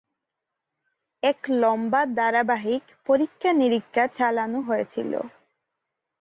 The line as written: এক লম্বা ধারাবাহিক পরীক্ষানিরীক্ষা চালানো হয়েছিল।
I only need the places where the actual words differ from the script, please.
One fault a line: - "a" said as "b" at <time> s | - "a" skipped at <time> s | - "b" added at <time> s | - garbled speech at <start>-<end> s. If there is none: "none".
none